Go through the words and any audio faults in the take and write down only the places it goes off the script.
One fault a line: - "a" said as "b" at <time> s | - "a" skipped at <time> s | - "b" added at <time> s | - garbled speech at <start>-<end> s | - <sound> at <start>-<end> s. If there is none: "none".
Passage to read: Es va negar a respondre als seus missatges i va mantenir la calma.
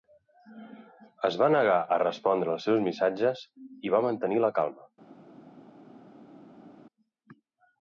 none